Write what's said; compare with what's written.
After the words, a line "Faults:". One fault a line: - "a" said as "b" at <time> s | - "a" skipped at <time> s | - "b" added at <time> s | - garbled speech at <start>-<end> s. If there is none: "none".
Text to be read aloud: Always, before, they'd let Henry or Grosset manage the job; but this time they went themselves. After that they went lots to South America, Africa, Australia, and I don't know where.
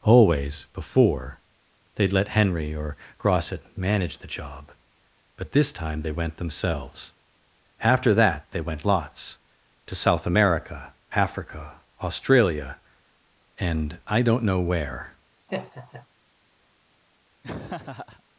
Always, before, they'd let Henry or Grosset manage the job; but this time they went themselves. After that they went lots to South America, Africa, Australia, and I don't know where.
Faults:
none